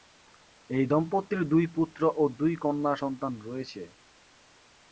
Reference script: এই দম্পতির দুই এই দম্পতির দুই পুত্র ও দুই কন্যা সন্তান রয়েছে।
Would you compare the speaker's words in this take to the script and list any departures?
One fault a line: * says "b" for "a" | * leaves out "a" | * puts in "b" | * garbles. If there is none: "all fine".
* leaves out "এই দম্পতির দুই"